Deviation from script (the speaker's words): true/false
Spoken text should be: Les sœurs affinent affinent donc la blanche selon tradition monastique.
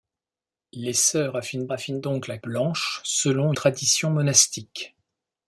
false